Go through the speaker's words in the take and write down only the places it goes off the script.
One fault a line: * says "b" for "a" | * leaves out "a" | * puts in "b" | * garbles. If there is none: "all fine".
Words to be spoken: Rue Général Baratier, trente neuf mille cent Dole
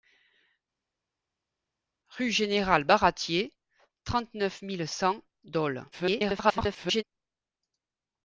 * garbles